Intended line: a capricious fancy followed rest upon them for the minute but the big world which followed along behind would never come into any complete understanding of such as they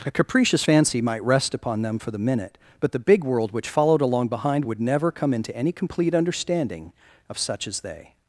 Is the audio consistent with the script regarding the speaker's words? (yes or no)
no